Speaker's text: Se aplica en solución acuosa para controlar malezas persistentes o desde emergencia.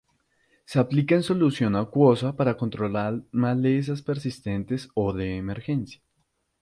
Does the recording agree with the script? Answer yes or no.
no